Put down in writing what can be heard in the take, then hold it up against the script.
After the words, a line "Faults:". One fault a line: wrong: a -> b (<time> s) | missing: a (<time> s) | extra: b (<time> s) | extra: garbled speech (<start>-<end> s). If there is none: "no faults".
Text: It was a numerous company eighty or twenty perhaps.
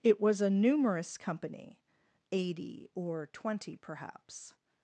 It was a numerous company eighty or twenty perhaps.
Faults:
no faults